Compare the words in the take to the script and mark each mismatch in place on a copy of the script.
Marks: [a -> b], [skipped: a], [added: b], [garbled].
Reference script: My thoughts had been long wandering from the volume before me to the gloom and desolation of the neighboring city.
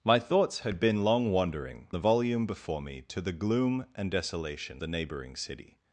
My thoughts had been long wandering [skipped: from] the volume before me to the gloom and desolation [skipped: of] the neighboring city.